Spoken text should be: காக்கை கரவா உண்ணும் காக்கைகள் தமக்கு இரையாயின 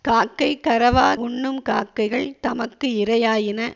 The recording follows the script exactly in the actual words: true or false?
true